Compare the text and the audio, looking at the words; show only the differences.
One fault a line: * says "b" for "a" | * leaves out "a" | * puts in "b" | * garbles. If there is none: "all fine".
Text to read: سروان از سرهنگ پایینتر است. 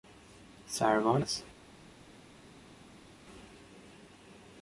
* leaves out "از سرهنگ پایینتر"